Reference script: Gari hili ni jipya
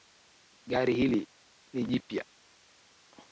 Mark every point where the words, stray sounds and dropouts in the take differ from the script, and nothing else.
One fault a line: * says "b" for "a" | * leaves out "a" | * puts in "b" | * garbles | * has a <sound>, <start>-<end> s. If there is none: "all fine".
all fine